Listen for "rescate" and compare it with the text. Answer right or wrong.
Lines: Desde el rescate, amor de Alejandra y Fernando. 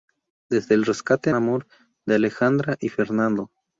right